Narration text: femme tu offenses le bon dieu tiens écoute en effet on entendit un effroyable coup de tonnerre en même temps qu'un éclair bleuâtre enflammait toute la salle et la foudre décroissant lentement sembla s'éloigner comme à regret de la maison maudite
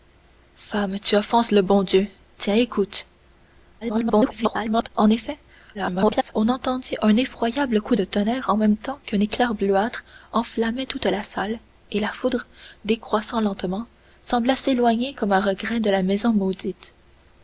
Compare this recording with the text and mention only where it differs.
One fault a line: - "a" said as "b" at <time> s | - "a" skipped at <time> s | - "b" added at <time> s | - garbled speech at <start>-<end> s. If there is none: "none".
- garbled speech at 3.8-4.9 s
- garbled speech at 5.7-6.3 s